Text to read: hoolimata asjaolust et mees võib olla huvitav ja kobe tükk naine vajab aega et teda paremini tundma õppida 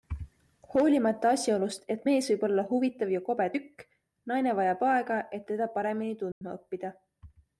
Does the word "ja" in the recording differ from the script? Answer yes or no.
no